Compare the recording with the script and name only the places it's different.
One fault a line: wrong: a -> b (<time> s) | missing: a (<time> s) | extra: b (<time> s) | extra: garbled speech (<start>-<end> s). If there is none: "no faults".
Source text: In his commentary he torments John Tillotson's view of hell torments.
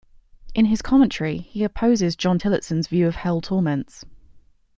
wrong: torments -> opposes (1.6 s)